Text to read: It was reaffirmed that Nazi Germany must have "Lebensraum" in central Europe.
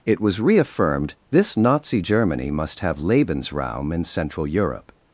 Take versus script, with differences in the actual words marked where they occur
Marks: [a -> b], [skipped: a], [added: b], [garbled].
It was reaffirmed [that -> this] Nazi Germany must have "Lebensraum" in central Europe.